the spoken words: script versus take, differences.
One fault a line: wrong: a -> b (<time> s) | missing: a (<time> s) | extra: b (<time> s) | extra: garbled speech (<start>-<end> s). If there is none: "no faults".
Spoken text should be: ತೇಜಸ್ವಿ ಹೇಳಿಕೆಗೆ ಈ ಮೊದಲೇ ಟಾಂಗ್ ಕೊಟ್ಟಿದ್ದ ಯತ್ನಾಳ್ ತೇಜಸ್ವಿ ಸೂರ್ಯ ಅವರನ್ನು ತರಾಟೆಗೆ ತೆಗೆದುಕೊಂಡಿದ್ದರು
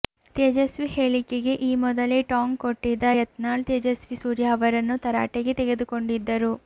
no faults